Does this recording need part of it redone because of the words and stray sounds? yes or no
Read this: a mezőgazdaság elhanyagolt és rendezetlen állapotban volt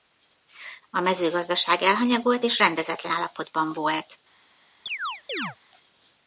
yes